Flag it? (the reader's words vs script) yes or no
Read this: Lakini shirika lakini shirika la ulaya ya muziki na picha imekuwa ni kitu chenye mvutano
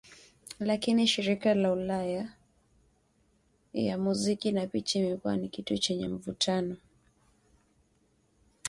yes